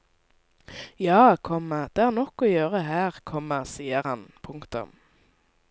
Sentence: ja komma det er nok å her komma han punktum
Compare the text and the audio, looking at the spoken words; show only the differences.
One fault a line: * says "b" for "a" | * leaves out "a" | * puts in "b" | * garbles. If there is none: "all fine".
* puts in "gjøre"
* puts in "sier"